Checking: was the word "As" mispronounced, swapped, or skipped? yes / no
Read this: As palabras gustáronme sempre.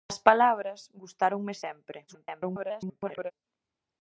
no